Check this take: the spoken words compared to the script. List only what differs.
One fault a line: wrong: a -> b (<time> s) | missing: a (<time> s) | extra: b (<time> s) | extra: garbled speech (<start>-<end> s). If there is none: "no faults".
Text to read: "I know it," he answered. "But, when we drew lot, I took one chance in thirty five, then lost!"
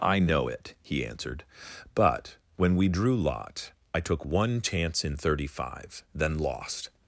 no faults